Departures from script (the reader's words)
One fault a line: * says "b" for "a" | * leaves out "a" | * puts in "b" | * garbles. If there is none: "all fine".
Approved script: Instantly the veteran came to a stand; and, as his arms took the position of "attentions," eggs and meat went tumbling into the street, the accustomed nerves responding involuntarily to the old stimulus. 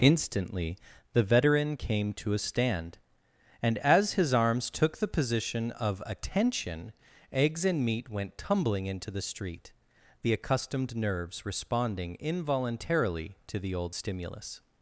* says "attention" for "attentions"